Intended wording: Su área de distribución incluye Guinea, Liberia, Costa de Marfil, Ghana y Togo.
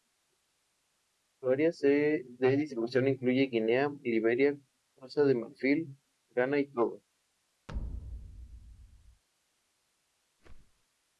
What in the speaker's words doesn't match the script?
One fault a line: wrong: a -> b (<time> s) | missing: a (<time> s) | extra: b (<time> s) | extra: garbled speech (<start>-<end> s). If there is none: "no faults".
no faults